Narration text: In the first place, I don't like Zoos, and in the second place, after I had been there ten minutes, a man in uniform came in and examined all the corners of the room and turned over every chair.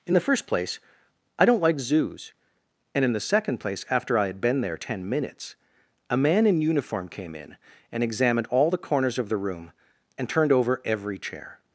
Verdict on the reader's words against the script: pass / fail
pass